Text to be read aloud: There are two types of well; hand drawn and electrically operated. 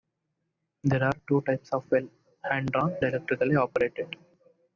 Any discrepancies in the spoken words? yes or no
yes